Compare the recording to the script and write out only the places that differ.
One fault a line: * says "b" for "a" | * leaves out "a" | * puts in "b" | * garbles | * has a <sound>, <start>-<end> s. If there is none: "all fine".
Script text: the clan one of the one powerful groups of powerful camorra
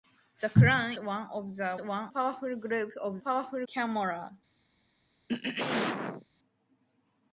* has a throat clearing, 5.3-6.2 s